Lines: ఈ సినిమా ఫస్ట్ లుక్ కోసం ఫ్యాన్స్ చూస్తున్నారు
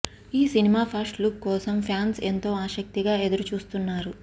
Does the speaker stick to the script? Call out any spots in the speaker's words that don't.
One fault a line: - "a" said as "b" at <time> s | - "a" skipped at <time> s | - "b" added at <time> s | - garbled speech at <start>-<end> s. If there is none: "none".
- "ఎంతో ఆసక్తిగా ఎదురు" added at 2.3 s